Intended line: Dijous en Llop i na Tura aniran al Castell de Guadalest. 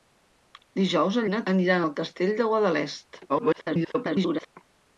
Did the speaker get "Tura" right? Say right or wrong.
wrong